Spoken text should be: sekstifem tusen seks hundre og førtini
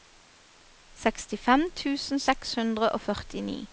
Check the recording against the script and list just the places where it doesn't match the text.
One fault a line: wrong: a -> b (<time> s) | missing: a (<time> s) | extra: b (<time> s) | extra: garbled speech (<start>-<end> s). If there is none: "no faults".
no faults